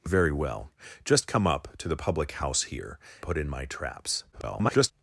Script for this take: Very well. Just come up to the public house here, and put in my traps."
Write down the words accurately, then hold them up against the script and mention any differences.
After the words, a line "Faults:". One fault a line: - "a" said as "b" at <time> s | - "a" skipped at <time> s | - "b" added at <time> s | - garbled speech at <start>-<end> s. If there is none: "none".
Very well. Just come up to the public house here, put in my traps." [garbled]
Faults:
- "and" skipped at 3.0 s
- garbled speech at 4.3-4.9 s